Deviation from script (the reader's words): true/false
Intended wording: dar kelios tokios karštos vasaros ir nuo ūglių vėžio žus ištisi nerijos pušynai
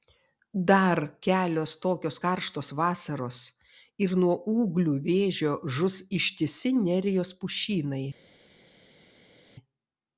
false